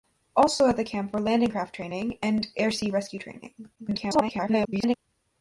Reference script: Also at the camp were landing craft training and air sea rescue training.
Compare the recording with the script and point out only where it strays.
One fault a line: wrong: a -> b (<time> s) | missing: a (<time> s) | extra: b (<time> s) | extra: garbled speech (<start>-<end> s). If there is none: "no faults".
extra: garbled speech (3.8-5.0 s)